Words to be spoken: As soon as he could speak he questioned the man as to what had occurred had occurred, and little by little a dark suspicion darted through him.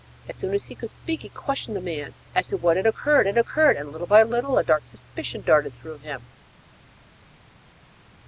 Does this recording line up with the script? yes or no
yes